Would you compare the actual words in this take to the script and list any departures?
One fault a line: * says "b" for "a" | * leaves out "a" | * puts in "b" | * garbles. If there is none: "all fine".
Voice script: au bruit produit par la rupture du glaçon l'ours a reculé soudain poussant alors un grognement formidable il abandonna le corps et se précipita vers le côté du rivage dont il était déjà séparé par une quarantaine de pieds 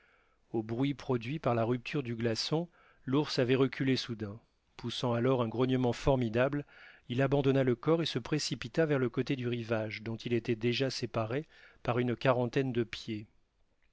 * says "avait" for "a"